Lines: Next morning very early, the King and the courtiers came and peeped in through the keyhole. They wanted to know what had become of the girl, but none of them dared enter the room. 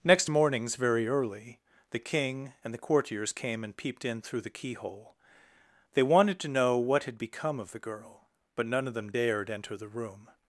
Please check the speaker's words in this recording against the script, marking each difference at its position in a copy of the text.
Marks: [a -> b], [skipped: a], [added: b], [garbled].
Next [morning -> mornings] very early, the King and the courtiers came and peeped in through the keyhole. They wanted to know what had become of the girl, but none of them dared enter the room.